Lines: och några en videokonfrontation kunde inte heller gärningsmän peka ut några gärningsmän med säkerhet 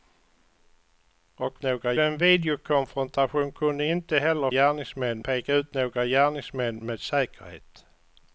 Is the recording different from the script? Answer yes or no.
no